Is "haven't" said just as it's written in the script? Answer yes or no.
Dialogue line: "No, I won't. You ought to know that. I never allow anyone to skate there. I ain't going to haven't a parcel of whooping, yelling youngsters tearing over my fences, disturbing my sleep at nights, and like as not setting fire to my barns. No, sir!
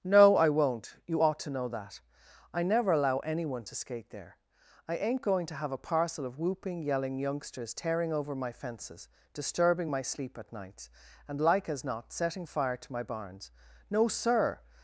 no